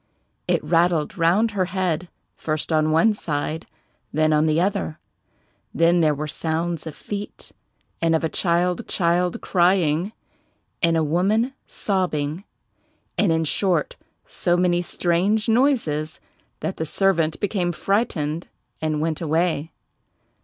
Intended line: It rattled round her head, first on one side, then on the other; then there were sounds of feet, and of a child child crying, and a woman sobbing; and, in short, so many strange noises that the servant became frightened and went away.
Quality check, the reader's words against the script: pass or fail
pass